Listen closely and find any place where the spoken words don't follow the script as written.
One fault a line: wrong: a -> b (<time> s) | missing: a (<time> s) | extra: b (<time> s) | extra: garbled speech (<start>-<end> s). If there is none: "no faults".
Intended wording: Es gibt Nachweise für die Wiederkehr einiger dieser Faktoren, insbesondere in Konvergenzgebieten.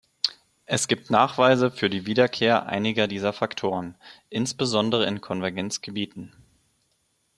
no faults